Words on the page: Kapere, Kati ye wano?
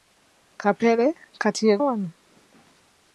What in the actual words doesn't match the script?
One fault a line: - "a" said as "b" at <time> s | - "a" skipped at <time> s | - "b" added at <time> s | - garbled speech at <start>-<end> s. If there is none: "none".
none